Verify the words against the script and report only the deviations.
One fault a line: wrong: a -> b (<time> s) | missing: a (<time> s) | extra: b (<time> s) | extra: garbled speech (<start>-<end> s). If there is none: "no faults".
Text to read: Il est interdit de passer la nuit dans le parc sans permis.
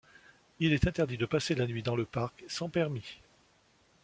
no faults